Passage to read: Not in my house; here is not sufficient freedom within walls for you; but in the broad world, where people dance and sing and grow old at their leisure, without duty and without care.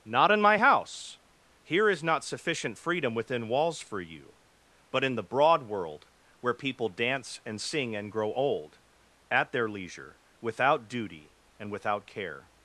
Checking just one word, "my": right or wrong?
right